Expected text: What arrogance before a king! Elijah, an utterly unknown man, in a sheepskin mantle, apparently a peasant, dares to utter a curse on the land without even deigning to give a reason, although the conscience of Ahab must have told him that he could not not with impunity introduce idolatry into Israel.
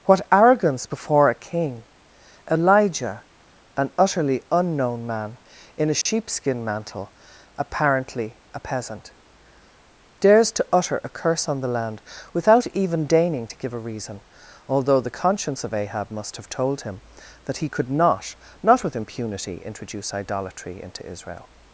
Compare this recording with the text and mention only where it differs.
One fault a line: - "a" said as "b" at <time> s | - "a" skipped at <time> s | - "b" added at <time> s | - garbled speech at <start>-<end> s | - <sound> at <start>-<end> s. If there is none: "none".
- dropout at 6.0-6.1 s